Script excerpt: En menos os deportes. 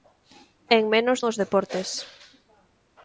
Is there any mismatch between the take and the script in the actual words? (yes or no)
no